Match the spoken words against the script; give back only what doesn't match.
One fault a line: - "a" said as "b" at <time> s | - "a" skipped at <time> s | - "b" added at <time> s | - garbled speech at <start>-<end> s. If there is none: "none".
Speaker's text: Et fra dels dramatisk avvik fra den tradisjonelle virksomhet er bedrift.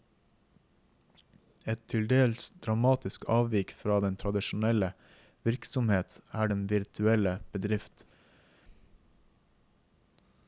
- "fra" said as "til" at 1.9 s
- "den virtuelle" added at 6.5 s